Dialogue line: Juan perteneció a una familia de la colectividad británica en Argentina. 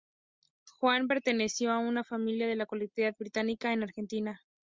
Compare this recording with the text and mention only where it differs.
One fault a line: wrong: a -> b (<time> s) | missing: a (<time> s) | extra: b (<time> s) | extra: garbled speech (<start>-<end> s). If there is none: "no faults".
no faults